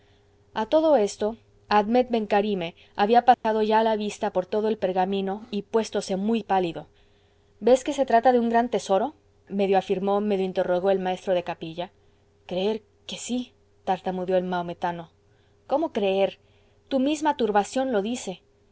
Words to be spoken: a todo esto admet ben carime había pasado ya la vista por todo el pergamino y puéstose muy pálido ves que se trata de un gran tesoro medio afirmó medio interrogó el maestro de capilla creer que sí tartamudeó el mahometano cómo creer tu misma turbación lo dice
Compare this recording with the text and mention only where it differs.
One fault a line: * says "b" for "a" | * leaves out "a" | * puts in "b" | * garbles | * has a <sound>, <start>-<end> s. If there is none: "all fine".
* has a dropout, 3.3-3.4 s